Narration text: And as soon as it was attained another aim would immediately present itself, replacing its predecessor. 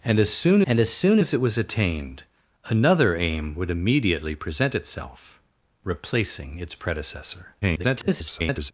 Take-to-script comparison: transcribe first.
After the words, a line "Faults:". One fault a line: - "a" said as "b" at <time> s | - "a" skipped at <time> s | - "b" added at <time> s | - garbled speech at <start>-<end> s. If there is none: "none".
And as soon and as soon as it was attained another aim would immediately present itself, replacing its predecessor. [garbled]
Faults:
- "and as soon" added at 0.6 s
- garbled speech at 7.6-8.7 s